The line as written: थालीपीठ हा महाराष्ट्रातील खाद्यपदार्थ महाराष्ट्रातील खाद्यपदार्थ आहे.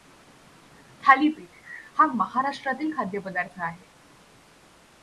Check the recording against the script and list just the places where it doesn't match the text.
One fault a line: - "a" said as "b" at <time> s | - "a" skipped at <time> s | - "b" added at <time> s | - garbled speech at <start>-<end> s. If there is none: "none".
- "महाराष्ट्रातील खाद्यपदार्थ" skipped at 3.6 s